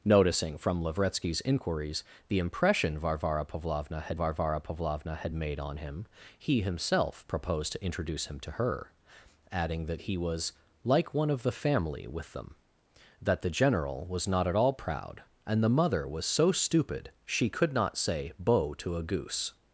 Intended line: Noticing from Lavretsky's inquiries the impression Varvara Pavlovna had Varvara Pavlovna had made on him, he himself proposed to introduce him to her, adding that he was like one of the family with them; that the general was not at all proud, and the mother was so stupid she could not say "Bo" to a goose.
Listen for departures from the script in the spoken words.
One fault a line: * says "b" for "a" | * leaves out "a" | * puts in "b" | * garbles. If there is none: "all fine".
all fine